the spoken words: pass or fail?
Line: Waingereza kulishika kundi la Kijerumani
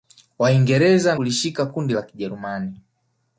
pass